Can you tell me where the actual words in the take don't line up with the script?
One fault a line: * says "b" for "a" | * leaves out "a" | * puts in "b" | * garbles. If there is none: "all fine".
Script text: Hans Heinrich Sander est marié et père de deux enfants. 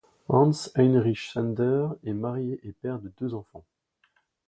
all fine